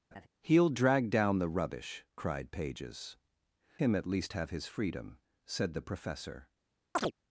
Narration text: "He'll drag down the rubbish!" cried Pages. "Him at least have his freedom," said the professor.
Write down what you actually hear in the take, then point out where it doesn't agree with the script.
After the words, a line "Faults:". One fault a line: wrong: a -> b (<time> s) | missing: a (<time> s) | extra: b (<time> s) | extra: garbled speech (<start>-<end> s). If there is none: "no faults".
"He'll drag down the rubbish!" cried Pages. "Him at least have his freedom," said the professor.
Faults:
no faults